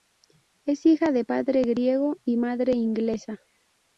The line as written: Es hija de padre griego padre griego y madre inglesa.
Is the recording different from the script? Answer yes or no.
yes